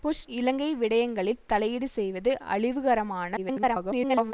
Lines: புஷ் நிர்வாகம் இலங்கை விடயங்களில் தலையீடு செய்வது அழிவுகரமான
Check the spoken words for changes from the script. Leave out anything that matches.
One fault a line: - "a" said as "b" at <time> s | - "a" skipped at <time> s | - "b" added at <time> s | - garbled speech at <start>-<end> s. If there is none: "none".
- "நிர்வாகம்" skipped at 0.2 s
- garbled speech at 3.4-4.3 s